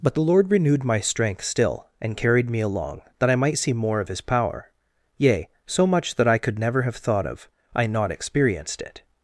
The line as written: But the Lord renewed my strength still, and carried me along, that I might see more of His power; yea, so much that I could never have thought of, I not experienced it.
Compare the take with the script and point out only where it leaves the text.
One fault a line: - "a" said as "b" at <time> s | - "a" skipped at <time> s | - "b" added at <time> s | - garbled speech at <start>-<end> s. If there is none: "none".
none